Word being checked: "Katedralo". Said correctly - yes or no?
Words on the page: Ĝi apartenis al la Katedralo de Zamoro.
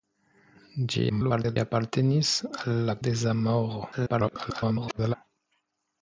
no